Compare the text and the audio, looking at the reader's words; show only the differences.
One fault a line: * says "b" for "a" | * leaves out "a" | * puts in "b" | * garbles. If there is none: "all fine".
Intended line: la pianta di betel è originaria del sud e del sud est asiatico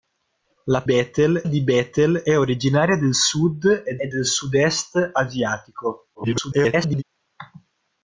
* says "betel" for "pianta"
* puts in "e"
* garbles